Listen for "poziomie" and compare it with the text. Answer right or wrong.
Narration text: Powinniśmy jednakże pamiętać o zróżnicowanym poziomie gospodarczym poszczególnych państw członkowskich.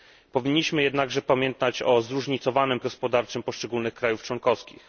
wrong